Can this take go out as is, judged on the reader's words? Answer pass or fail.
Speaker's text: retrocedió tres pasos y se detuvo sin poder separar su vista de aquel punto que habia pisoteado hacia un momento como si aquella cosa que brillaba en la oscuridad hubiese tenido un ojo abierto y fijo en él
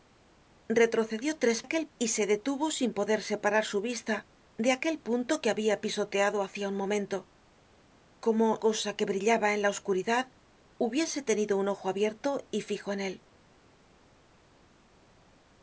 fail